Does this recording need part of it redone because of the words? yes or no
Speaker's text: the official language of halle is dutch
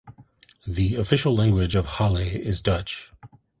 no